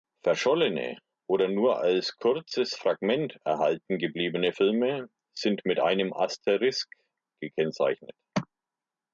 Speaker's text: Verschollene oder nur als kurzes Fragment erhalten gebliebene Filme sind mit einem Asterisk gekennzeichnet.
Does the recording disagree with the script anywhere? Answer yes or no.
no